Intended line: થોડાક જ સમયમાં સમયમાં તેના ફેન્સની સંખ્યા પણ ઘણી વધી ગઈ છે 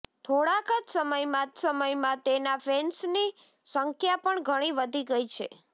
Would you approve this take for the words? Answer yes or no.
yes